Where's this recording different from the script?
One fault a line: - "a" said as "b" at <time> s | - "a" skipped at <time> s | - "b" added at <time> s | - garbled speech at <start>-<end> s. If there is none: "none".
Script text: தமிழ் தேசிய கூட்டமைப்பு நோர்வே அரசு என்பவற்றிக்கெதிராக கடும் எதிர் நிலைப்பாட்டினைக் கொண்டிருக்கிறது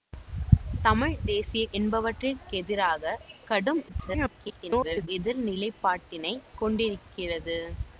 - "கூட்டமைப்பு நோர்வே அரசு" skipped at 1.6 s
- garbled speech at 3.9-5.1 s